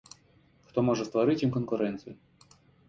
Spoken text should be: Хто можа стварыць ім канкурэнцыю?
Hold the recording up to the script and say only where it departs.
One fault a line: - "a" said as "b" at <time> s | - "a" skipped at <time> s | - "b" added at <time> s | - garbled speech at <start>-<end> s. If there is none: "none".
none